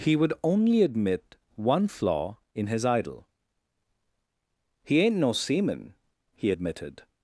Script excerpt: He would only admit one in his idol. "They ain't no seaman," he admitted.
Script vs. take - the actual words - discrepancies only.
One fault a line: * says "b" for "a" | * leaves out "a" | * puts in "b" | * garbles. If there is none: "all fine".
* puts in "flaw"
* says "He" for "They"